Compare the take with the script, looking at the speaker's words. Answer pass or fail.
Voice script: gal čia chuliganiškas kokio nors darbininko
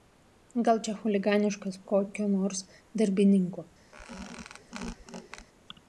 pass